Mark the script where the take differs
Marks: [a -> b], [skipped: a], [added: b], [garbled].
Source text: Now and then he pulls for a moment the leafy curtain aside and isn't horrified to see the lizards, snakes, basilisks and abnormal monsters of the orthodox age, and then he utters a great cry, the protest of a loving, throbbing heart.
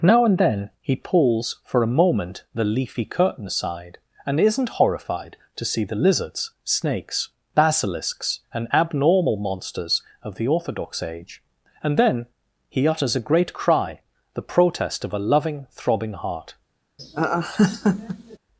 Now and then he pulls for a moment the leafy curtain aside and isn't horrified to see the lizards, snakes, basilisks and abnormal monsters of the orthodox age, and then he utters a great cry, the protest of a loving, throbbing heart.